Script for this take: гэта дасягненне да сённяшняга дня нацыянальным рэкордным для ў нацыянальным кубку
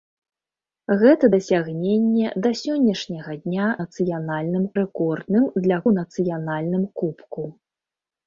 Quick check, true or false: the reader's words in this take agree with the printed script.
true